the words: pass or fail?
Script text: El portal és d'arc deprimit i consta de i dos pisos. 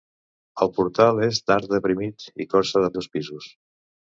pass